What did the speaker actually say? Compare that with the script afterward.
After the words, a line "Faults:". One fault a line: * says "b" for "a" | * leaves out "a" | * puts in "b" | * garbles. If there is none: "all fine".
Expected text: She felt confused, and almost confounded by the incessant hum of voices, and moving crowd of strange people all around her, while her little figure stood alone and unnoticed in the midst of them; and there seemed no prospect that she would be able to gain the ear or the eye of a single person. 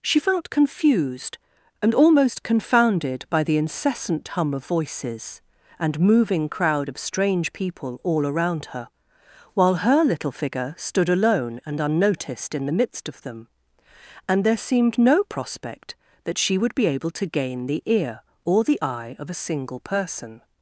She felt confused, and almost confounded by the incessant hum of voices, and moving crowd of strange people all around her, while her little figure stood alone and unnoticed in the midst of them; and there seemed no prospect that she would be able to gain the ear or the eye of a single person.
Faults:
all fine